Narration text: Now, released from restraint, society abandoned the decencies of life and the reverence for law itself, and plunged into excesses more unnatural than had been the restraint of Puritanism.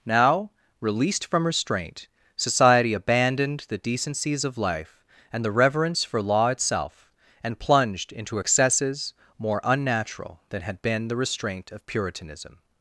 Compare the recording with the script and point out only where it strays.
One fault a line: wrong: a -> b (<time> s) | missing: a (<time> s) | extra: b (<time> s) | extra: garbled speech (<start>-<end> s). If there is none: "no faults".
no faults